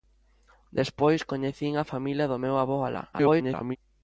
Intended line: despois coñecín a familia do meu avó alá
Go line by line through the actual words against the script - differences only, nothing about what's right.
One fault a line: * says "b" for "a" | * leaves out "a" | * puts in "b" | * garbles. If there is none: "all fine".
* garbles